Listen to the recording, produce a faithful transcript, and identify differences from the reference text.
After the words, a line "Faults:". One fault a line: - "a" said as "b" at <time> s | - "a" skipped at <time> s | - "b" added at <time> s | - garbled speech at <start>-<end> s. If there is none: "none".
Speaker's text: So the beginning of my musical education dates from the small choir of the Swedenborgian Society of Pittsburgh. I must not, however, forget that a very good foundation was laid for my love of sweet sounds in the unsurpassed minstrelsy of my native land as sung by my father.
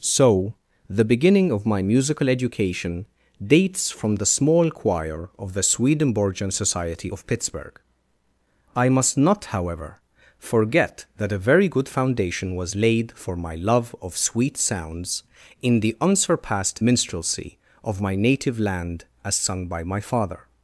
So the beginning of my musical education dates from the small choir of the Swedenborgian Society of Pittsburgh. I must not, however, forget that a very good foundation was laid for my love of sweet sounds in the unsurpassed minstrelsy of my native land as sung by my father.
Faults:
none